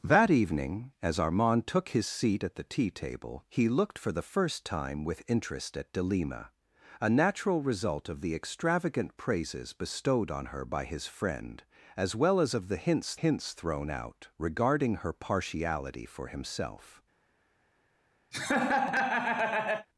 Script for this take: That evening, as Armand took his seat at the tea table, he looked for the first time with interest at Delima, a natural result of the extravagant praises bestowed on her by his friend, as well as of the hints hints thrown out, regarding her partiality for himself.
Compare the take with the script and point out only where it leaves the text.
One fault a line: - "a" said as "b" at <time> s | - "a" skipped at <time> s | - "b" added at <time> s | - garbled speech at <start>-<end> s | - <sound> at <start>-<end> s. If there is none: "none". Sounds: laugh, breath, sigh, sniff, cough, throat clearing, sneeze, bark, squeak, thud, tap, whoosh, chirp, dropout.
- laugh at 18.3-19.9 s